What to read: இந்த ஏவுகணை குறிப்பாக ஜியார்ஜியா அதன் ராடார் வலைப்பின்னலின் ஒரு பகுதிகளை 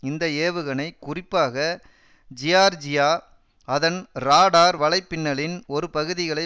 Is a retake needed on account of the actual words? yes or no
no